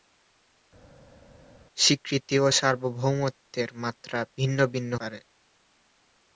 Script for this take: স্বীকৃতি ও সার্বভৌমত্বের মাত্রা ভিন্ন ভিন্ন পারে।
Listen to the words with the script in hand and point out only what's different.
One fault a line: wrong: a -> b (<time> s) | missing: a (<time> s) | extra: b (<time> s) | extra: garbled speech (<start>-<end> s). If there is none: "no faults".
no faults